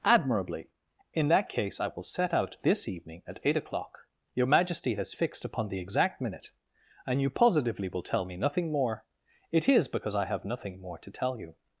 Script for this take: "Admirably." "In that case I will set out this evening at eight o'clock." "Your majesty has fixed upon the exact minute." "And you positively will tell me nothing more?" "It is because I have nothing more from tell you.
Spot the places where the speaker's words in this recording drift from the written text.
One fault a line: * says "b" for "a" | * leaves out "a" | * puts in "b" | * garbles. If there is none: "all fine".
* says "to" for "from"